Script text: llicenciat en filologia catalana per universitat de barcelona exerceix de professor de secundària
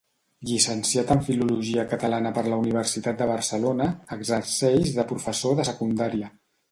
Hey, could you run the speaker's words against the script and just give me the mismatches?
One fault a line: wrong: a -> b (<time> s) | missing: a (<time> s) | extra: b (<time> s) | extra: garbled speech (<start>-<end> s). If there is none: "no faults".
extra: la (2.5 s)